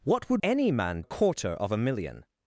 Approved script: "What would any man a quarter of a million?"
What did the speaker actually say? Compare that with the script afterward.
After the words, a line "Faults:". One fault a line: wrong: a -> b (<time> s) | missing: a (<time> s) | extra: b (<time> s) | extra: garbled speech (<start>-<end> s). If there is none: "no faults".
"What would any man a quarter of a million?"
Faults:
no faults